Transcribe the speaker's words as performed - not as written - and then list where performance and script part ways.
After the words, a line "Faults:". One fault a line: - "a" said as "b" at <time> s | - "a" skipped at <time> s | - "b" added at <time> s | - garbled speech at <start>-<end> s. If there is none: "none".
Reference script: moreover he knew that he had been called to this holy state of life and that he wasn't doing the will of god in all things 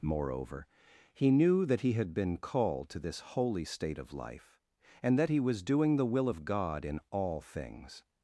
moreover he knew that he had been called to this holy state of life and that he was doing the will of god in all things
Faults:
- "wasn't" said as "was" at 5.4 s